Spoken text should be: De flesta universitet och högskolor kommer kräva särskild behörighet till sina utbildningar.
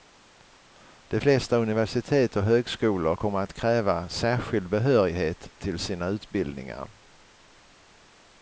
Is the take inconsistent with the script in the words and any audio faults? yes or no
yes